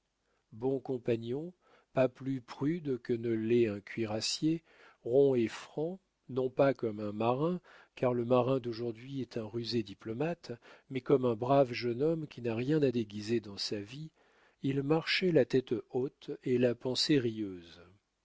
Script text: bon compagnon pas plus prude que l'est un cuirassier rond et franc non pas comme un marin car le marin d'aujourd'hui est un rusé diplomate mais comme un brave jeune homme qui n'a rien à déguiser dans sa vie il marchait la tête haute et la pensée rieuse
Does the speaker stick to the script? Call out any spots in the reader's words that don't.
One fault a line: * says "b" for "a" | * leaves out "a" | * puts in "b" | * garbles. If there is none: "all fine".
* puts in "ne"